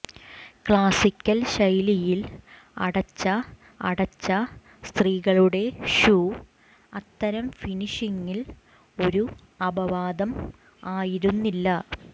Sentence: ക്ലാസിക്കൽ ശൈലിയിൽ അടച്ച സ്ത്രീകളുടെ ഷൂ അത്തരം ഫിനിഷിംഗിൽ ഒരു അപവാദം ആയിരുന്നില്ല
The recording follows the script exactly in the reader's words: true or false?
false